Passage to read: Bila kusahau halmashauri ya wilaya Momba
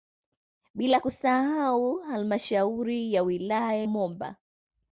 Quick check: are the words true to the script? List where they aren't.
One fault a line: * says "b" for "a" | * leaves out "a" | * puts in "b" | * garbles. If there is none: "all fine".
all fine